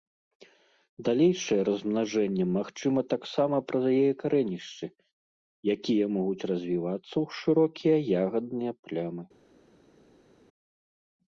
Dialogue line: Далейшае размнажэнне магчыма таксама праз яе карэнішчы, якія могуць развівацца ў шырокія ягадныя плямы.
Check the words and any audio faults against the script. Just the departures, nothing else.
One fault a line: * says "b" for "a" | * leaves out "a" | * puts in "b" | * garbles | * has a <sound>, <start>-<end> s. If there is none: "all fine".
all fine